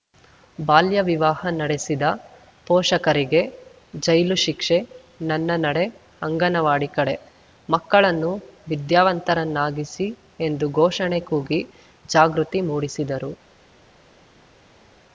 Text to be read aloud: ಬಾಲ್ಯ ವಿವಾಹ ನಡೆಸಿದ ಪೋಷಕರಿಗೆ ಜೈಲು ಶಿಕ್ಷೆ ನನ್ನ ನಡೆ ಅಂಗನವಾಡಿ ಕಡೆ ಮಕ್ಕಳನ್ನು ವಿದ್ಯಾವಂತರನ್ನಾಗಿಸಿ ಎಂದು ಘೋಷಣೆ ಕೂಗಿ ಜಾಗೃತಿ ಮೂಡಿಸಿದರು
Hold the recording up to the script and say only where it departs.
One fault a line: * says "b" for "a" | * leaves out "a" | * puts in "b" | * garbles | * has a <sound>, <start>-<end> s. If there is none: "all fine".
all fine